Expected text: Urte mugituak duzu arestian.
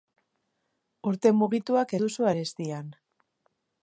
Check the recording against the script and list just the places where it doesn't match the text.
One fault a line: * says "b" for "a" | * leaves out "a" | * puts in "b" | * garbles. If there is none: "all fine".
all fine